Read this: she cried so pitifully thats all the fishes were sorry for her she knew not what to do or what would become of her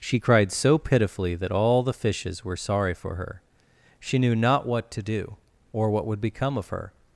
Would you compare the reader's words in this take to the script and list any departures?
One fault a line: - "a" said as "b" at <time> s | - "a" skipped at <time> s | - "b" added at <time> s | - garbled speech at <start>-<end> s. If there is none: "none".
- "thats" said as "that" at 1.4 s